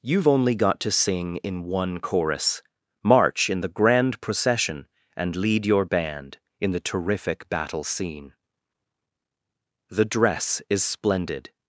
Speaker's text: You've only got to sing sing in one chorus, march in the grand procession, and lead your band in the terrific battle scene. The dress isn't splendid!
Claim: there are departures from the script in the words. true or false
true